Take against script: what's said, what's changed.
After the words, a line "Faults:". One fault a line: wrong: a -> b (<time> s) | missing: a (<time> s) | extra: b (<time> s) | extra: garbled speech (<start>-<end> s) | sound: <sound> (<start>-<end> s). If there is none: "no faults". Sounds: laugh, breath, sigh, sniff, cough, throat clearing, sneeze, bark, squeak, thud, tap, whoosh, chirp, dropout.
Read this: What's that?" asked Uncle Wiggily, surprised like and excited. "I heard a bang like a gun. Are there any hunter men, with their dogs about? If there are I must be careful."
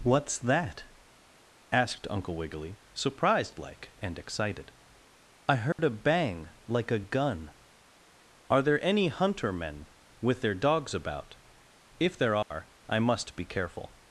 What's that?" asked Uncle Wiggily, surprised like and excited. "I heard a bang like a gun. Are there any hunter men, with their dogs about? If there are I must be careful."
Faults:
sound: dropout (5.7-5.8 s)
sound: dropout (12.4-12.5 s)